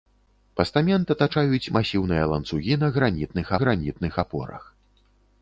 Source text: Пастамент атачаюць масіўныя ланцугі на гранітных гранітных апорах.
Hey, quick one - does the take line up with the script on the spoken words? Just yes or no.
yes